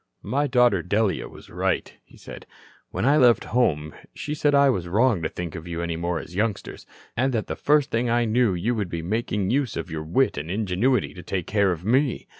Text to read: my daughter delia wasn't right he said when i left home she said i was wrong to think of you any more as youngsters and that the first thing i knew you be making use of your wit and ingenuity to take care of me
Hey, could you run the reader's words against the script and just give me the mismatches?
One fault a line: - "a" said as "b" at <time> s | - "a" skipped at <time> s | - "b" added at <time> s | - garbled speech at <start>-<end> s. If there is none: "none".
- "wasn't" said as "was" at 1.3 s
- "would" added at 8.8 s